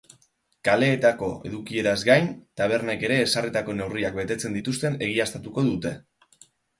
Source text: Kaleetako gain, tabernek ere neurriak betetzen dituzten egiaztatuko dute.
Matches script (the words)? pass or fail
fail